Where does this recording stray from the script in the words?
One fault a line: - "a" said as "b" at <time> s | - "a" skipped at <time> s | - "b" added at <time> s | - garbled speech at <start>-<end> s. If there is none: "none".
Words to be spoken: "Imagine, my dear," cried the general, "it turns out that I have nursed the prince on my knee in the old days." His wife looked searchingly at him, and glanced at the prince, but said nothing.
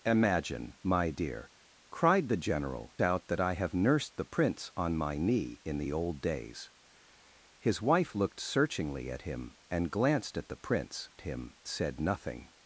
- "it turns" skipped at 3.0 s
- "but" said as "him" at 11.2 s